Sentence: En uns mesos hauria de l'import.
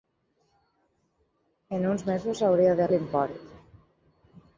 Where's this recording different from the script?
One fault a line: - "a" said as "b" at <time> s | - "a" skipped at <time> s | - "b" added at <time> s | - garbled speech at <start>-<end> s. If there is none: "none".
none